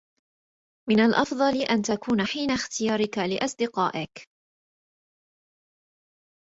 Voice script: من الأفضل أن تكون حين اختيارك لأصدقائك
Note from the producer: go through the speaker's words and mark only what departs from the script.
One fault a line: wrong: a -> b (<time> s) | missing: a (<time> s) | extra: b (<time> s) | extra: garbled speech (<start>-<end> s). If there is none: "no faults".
no faults